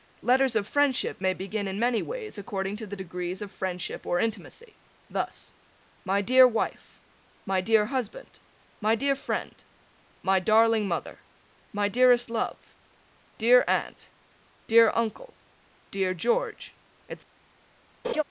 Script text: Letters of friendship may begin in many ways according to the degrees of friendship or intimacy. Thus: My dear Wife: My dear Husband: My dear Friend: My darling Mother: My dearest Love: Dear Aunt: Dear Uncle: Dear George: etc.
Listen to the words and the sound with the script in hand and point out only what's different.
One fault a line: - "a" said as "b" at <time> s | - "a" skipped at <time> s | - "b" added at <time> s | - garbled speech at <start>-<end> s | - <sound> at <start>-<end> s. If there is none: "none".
- laugh at 18.0-18.2 s